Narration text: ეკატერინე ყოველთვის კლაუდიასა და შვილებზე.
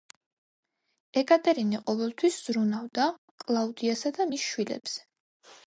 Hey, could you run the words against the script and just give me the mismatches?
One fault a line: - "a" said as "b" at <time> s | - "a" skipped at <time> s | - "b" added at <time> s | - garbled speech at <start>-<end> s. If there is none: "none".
- "ზრუნავდა" added at 2.5 s
- "მის" added at 4.3 s